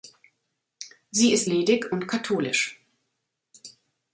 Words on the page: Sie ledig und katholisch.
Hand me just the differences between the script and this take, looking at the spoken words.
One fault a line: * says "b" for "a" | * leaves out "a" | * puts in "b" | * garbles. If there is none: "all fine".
* puts in "ist"